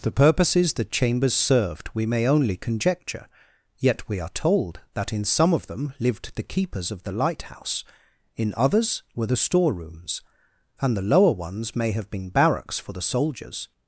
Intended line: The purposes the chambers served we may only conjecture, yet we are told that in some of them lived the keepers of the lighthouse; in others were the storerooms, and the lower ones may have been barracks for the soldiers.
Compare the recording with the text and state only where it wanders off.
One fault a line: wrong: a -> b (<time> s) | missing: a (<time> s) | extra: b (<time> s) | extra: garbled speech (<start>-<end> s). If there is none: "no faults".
no faults